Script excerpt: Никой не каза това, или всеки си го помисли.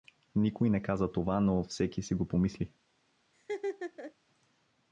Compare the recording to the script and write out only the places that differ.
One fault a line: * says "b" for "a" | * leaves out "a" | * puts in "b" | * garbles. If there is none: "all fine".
* says "но" for "или"